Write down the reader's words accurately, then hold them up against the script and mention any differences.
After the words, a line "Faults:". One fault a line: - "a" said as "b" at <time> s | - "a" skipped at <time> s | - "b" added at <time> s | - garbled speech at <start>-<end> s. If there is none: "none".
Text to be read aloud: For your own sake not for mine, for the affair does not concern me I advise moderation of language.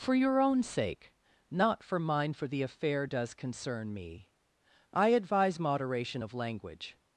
For your own sake not for mine, for the affair does concern me I advise moderation of language.
Faults:
- "not" skipped at 3.3 s